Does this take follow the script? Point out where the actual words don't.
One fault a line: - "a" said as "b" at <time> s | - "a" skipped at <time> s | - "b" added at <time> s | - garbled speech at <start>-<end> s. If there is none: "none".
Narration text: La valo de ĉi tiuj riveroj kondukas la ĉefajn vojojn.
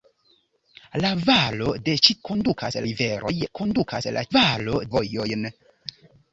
- "tiuj" said as "kondukas" at 2.3 s
- "ĉefajn" said as "valo" at 4.3 s